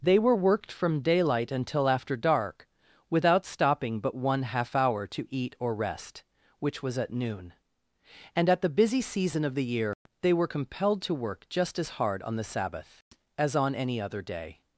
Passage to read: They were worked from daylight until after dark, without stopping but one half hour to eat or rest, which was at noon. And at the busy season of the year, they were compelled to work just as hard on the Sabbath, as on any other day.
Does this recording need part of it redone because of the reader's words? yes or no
no